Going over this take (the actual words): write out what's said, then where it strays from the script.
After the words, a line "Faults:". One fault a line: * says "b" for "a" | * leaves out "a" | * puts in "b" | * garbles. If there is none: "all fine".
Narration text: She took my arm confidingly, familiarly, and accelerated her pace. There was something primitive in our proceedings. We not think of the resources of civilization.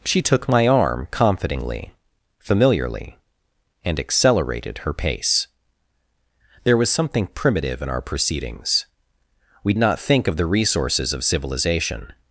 She took my arm confidingly, familiarly, and accelerated her pace. There was something primitive in our proceedings. We not think of the resources of civilization.
Faults:
all fine